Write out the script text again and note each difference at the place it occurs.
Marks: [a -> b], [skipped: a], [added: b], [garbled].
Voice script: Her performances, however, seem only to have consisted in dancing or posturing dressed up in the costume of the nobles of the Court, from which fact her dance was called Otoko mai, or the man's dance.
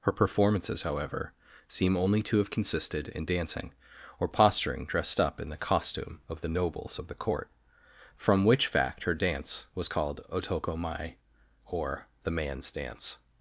Her performances, however, seem only to have consisted in dancing or posturing dressed up in the costume of the nobles of the Court, from which fact her dance was called Otoko mai, or the man's dance.